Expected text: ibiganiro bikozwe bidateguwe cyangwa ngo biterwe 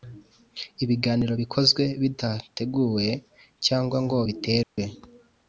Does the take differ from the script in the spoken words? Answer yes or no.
no